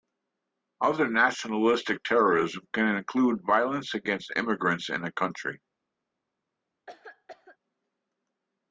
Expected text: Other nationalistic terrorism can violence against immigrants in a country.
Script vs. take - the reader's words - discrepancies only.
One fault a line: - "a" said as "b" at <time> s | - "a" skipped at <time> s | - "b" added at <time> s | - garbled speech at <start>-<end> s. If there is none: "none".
- "include" added at 3.0 s